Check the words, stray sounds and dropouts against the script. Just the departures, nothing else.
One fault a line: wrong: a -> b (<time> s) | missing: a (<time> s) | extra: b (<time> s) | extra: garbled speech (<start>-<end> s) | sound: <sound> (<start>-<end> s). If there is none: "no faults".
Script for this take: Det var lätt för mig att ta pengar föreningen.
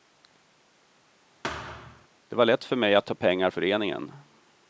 sound: thud (1.4-2.1 s)